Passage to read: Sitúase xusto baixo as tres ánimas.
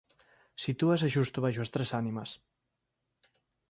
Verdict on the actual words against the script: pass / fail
pass